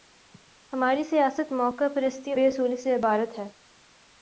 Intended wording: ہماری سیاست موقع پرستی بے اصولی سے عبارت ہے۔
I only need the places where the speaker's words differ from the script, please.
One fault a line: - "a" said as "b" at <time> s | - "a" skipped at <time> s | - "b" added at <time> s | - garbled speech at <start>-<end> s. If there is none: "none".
none